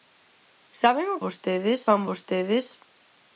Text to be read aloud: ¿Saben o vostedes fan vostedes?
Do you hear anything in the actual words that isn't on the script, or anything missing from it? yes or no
no